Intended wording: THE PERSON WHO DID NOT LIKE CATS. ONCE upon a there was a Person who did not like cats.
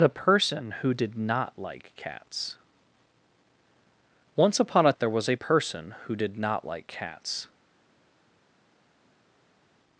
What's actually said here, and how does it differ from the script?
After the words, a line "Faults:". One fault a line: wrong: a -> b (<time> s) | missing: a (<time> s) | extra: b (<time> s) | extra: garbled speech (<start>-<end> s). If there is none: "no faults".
THE PERSON WHO DID NOT LIKE CATS. ONCE upon a there was a Person who did not like cats.
Faults:
no faults